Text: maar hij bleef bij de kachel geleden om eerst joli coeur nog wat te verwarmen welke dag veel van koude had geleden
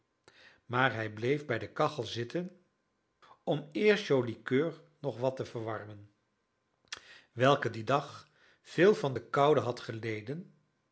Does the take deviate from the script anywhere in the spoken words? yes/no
yes